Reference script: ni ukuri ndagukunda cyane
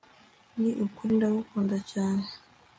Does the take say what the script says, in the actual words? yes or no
yes